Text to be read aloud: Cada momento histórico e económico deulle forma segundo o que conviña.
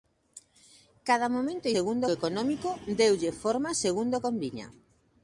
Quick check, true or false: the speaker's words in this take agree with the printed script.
false